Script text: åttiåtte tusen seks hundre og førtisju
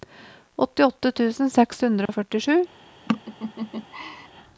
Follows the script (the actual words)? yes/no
yes